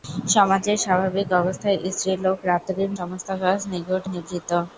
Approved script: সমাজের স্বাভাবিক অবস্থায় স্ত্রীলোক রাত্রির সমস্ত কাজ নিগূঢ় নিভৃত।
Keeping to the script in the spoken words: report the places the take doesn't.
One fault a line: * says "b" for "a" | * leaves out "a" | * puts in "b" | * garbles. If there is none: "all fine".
all fine